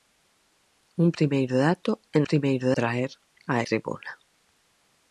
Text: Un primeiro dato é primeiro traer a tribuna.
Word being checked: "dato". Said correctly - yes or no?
yes